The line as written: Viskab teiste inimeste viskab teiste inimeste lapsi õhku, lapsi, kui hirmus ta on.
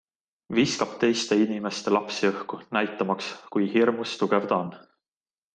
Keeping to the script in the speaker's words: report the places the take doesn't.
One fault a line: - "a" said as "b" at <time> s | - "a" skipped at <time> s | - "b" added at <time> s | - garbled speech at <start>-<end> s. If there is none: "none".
- "viskab teiste inimeste" skipped at 1.9 s
- "lapsi" said as "näitamaks" at 2.8 s
- "tugev" added at 4.2 s